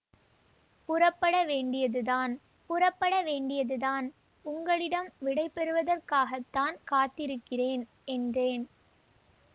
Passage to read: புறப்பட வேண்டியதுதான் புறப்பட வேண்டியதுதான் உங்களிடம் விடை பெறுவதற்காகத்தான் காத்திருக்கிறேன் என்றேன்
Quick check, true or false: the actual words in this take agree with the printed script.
true